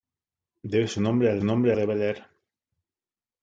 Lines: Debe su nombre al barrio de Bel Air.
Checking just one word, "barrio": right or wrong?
wrong